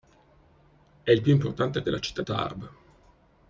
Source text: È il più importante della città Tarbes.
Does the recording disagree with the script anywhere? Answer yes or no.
no